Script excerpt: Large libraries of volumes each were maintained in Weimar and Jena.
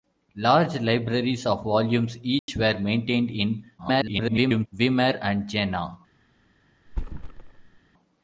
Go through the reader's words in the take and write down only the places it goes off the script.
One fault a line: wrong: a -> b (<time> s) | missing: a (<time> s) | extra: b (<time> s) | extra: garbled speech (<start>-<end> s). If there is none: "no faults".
extra: garbled speech (3.8-4.7 s)